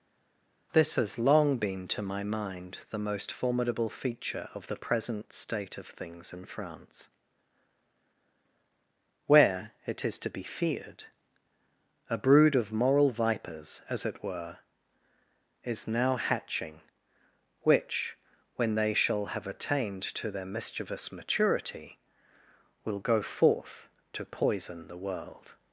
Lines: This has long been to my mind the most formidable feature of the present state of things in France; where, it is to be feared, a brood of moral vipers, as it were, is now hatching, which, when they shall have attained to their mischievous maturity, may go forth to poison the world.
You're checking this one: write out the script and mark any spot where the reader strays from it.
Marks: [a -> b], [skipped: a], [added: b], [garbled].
This has long been to my mind the most formidable feature of the present state of things in France; where, it is to be feared, a brood of moral vipers, as it were, is now hatching, which, when they shall have attained to their mischievous maturity, [may -> will] go forth to poison the world.